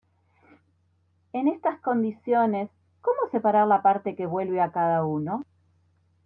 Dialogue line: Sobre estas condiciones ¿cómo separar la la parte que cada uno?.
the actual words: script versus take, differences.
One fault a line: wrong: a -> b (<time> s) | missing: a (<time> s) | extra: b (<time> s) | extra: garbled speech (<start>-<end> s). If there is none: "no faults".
wrong: Sobre -> En (1.3 s)
missing: la (3.8 s)
extra: vuelve a (4.2 s)